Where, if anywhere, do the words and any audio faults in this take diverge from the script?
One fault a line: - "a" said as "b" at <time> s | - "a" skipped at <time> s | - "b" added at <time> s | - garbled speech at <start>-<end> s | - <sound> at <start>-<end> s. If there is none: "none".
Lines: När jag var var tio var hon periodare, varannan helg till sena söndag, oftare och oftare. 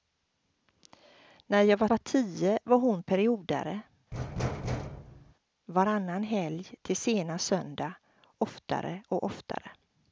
- thud at 4.1-5.3 s